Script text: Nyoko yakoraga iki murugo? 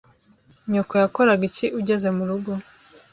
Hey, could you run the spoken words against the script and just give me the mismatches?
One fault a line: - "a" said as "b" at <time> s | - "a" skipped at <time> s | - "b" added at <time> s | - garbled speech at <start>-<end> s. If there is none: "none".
- "ugeze" added at 1.8 s